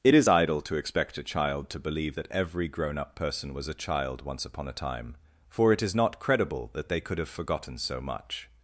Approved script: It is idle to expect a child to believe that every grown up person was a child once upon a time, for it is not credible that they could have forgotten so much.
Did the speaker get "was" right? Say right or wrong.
right